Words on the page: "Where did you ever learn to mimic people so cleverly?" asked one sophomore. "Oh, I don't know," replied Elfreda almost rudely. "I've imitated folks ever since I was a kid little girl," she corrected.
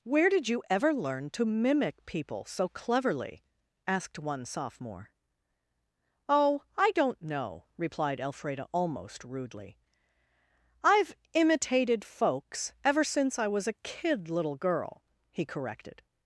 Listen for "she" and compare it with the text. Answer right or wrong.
wrong